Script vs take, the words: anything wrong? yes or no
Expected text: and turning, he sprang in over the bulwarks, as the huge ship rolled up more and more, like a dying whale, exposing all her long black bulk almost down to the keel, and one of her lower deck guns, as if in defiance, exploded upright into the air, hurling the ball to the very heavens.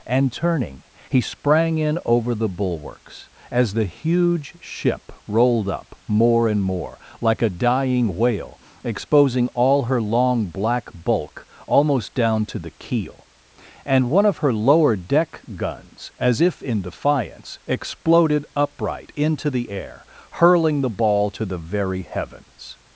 no